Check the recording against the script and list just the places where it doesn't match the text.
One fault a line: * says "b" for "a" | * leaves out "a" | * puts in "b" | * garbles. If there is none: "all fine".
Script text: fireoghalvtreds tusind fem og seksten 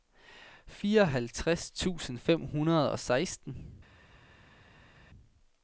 * puts in "hundrede"